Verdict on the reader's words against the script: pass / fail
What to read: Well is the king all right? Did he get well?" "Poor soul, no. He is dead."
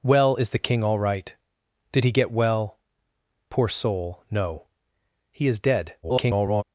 fail